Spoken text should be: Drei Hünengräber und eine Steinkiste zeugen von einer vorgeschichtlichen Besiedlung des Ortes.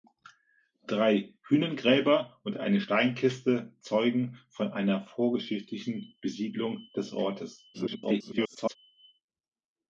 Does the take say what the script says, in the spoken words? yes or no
no